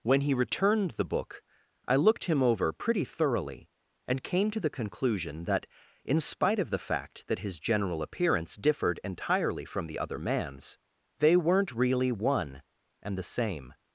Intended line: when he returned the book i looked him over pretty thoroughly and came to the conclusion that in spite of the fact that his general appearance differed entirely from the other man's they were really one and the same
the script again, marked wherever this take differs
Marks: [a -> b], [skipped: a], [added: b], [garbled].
when he returned the book i looked him over pretty thoroughly and came to the conclusion that in spite of the fact that his general appearance differed entirely from the other man's they [were -> weren't] really one and the same